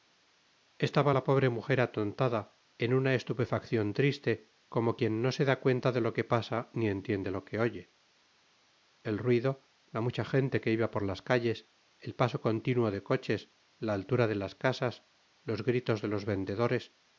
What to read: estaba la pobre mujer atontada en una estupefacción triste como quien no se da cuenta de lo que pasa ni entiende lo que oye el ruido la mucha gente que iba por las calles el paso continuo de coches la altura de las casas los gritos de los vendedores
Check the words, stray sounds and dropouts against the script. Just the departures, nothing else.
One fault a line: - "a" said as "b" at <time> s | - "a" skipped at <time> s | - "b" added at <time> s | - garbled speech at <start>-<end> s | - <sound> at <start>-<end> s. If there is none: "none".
none